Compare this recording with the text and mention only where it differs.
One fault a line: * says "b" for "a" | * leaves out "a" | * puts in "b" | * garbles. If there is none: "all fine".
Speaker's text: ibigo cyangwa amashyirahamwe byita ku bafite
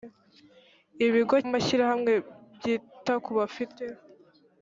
* leaves out "cyangwa"